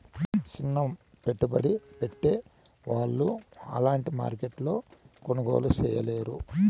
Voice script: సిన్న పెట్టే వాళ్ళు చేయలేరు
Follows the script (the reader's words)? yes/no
no